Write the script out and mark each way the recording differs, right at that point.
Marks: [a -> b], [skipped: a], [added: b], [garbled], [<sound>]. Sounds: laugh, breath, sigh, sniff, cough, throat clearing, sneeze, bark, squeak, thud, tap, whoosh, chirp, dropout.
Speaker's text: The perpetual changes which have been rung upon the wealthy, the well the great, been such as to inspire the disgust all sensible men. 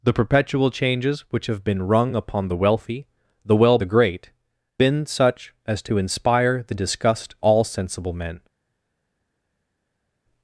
The perpetual changes which have been rung upon the wealthy, the well the great, been such as to inspire the disgust all sensible men.